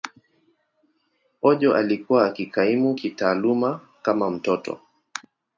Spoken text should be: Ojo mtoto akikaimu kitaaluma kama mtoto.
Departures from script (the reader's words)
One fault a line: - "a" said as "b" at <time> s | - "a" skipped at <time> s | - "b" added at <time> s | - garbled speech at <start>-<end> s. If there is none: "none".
- "mtoto" said as "alikuwa" at 1.8 s